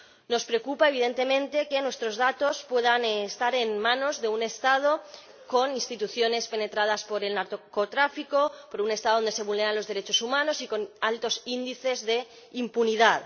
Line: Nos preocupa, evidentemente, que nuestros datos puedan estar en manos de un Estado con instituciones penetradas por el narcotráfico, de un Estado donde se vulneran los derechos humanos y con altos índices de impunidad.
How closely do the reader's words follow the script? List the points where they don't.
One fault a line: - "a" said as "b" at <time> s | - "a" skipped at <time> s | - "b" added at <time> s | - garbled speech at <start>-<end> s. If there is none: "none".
none